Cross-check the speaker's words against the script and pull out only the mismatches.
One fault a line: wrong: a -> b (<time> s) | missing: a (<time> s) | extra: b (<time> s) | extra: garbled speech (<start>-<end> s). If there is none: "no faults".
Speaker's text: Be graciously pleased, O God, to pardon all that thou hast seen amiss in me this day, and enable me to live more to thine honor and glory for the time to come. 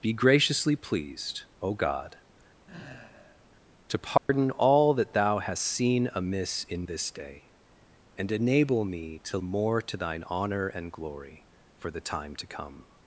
missing: me (6.9 s)
missing: live (9.4 s)